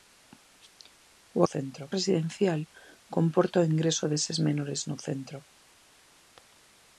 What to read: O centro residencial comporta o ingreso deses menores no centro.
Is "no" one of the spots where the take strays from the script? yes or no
no